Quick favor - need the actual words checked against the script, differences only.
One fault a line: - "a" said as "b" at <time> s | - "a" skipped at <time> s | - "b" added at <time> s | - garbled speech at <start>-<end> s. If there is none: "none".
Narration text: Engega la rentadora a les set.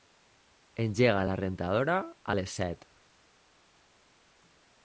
none